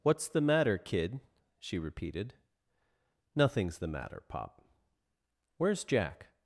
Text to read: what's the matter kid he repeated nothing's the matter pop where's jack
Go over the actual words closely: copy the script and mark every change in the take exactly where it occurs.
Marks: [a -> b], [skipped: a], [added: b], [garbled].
what's the matter kid [he -> she] repeated nothing's the matter pop where's jack